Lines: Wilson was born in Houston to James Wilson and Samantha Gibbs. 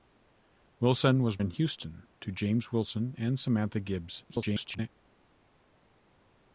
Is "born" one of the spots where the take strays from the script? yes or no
yes